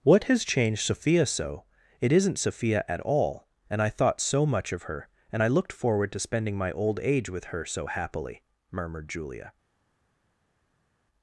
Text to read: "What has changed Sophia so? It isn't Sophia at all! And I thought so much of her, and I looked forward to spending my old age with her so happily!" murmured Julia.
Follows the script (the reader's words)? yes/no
yes